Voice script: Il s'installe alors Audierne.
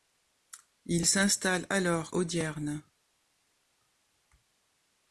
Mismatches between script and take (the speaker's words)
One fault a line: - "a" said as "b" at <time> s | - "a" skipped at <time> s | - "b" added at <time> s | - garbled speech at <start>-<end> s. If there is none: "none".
none